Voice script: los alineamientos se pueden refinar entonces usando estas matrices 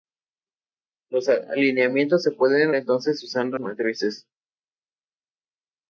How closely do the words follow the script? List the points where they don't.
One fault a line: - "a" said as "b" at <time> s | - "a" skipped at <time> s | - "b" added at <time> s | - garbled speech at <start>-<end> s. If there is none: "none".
- "refinar" skipped at 2.8 s
- "estas" skipped at 3.6 s